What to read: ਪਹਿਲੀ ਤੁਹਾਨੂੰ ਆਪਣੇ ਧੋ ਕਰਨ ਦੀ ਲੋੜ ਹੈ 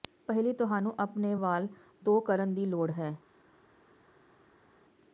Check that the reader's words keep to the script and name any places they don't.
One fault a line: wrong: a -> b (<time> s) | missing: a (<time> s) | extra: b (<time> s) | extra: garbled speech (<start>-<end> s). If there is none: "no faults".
extra: ਵਾਲ (1.3 s)